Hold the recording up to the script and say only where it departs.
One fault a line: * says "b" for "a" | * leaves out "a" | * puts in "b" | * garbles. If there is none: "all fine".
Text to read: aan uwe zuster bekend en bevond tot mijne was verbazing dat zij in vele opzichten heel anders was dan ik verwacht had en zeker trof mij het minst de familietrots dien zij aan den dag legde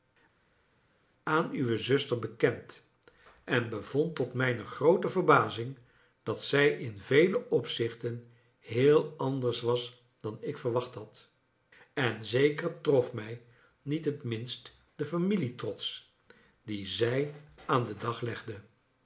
* says "groote" for "was"
* puts in "niet"